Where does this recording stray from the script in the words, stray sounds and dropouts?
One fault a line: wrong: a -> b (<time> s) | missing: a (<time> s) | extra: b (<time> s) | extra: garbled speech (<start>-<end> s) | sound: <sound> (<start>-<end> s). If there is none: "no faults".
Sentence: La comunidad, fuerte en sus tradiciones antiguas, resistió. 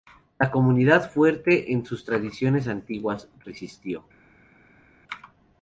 no faults